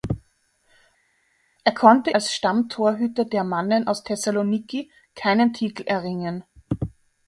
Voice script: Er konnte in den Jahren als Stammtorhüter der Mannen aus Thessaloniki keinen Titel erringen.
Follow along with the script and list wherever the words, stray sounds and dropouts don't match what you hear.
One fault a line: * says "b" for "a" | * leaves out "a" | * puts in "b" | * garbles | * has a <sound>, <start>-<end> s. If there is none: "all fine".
* leaves out "in den Jahren"